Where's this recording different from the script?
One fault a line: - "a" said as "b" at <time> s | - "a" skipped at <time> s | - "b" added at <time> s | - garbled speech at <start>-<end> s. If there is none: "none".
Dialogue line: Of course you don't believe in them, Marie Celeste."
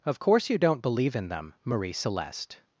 none